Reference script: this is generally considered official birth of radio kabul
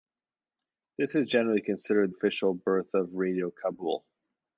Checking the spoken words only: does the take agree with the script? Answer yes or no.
yes